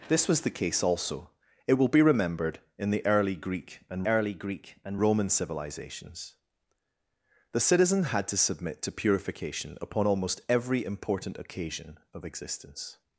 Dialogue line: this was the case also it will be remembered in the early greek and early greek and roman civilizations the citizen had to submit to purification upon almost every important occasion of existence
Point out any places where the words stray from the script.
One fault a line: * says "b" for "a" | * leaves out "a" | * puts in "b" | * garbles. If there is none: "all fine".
all fine